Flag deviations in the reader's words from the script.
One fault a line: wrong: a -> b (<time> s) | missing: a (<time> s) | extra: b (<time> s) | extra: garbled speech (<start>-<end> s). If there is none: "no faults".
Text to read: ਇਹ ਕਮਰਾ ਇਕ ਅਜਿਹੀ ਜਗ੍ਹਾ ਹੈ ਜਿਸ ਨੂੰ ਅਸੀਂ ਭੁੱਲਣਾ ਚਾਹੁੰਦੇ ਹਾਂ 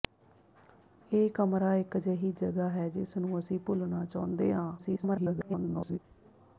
extra: garbled speech (4.8-6.0 s)